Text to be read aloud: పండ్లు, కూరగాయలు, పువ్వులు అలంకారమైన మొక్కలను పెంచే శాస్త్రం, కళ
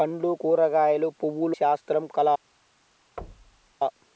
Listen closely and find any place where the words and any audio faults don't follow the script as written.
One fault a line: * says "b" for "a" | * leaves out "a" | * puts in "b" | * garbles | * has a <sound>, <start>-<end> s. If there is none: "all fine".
* leaves out "అలంకారమైన మొక్కలను పెంచే"
* has a thud, 3.2-3.7 s